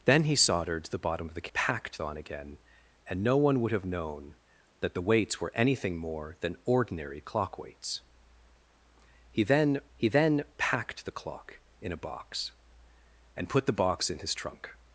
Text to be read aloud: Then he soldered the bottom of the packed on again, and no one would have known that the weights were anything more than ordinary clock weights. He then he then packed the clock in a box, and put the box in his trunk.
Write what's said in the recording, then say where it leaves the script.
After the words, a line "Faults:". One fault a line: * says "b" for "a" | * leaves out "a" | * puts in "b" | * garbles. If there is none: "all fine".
Then he soldered the bottom of the packed on again, and no one would have known that the weights were anything more than ordinary clock weights. He then he then packed the clock in a box, and put the box in his trunk.
Faults:
all fine